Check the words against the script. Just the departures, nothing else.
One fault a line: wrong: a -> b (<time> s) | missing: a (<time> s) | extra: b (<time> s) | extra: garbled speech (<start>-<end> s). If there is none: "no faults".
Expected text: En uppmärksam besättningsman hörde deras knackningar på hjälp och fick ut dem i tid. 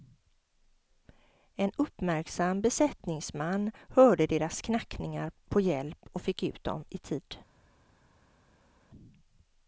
no faults